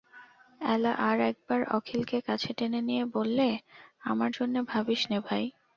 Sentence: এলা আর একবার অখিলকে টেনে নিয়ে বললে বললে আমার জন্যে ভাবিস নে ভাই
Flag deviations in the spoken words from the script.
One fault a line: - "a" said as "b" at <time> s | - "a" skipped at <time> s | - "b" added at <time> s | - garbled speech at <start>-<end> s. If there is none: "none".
- "কাছে" added at 2.2 s
- "বললে" skipped at 3.5 s